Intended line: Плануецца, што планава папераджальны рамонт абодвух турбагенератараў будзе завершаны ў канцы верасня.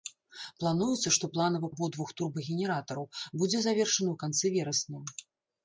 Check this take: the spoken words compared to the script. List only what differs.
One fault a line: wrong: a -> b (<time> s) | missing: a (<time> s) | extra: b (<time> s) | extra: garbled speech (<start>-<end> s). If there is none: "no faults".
missing: папераджальны рамонт (1.7 s)